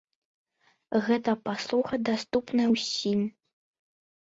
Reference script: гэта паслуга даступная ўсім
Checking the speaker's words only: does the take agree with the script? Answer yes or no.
yes